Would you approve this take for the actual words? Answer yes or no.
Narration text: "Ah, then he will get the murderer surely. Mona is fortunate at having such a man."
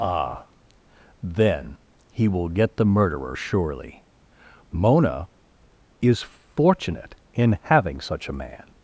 no